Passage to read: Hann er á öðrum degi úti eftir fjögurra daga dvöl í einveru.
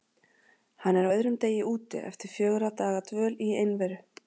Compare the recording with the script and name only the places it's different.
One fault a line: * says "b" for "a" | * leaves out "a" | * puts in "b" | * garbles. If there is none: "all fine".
all fine